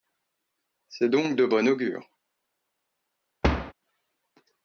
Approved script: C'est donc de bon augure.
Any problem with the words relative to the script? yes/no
no